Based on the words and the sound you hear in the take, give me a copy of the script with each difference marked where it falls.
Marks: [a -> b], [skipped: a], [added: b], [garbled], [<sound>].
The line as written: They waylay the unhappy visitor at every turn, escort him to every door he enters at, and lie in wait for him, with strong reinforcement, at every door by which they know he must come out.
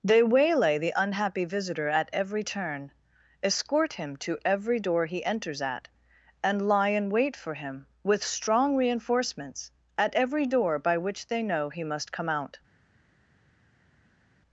They waylay the unhappy visitor at every turn, escort him to every door he enters at, and lie in wait for him, with strong [reinforcement, -> reinforcements] at every door by which they know he must come out.